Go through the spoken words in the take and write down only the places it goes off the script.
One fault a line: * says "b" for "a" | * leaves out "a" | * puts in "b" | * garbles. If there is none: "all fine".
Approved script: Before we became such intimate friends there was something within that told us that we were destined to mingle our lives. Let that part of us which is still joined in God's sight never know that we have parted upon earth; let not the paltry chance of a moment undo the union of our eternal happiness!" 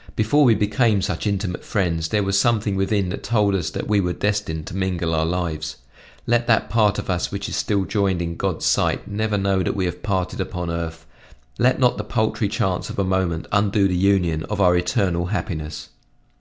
all fine